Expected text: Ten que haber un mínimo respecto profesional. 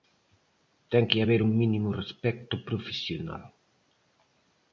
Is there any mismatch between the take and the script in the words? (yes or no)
no